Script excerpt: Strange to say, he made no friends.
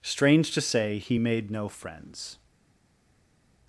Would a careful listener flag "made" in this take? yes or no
no